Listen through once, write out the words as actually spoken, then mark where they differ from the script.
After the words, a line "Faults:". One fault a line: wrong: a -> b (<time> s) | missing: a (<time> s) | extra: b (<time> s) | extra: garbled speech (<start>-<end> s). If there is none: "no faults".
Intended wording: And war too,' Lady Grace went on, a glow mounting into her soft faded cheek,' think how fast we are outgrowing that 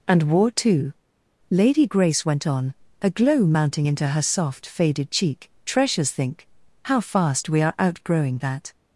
And war too,' Lady Grace went on, a glow mounting into her soft faded cheek,' treasures think how fast we are outgrowing that
Faults:
extra: treasures (5.6 s)